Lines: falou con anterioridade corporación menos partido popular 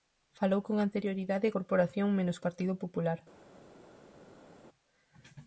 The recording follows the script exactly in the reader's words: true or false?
true